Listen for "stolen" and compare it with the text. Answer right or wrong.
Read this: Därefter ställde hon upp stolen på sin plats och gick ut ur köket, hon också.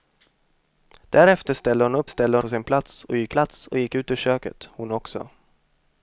wrong